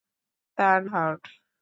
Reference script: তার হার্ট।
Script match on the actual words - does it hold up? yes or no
yes